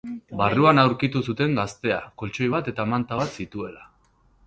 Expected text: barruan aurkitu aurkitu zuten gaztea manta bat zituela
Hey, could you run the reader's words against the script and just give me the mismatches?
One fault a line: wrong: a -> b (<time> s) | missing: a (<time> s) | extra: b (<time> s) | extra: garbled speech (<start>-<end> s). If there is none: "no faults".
missing: aurkitu (1.2 s)
extra: koltxoi bat eta (2.2 s)